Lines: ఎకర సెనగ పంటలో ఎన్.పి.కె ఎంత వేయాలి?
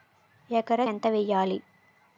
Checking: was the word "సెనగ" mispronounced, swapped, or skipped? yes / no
yes